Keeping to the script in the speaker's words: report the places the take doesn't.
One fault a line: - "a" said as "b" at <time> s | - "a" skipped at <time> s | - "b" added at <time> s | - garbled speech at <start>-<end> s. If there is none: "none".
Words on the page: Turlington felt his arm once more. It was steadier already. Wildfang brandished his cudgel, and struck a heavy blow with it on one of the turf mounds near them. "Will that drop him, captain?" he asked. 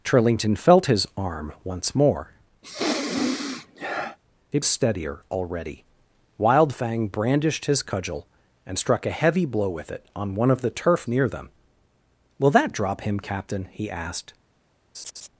- "was" skipped at 4.7 s
- "mounds" skipped at 11.1 s